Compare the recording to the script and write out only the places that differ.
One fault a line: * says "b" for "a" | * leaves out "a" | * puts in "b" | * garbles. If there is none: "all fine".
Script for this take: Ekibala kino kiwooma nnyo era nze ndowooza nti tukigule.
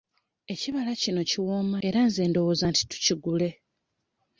* leaves out "nnyo"